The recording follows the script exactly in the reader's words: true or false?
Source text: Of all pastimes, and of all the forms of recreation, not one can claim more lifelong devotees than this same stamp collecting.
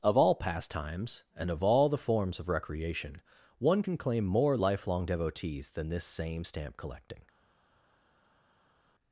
false